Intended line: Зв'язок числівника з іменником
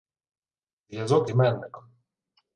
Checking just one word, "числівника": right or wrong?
wrong